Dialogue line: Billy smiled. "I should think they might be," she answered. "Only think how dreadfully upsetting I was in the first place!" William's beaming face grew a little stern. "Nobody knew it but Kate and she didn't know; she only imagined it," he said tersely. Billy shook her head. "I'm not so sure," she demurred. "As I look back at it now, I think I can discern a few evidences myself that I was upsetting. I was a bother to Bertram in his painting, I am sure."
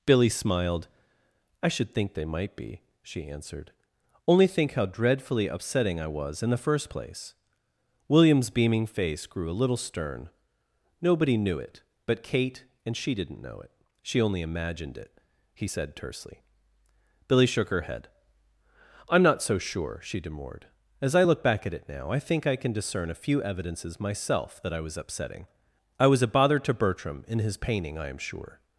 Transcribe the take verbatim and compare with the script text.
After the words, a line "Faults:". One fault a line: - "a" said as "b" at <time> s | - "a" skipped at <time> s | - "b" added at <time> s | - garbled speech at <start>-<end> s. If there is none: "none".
Billy smiled. "I should think they might be," she answered. "Only think how dreadfully upsetting I was in the first place!" William's beaming face grew a little stern. "Nobody knew it but Kate and she didn't know it; she only imagined it," he said tersely. Billy shook her head. "I'm not so sure," she demurred. "As I look back at it now, I think I can discern a few evidences myself that I was upsetting. I was a bother to Bertram in his painting, I am sure."
Faults:
- "it" added at 13.6 s